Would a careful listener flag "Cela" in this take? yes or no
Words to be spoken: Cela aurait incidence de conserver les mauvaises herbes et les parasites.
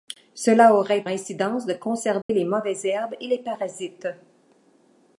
no